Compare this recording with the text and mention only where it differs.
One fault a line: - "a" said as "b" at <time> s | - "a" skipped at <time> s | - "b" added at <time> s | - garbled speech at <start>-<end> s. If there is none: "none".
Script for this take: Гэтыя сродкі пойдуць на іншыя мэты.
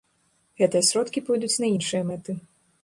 none